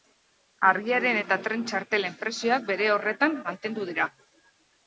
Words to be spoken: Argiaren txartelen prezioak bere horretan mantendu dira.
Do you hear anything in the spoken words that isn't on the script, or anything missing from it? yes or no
yes